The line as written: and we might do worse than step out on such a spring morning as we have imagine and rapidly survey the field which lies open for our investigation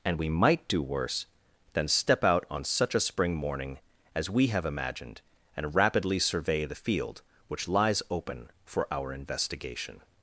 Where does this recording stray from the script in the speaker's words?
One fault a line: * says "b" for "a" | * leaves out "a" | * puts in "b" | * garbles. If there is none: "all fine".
* says "imagined" for "imagine"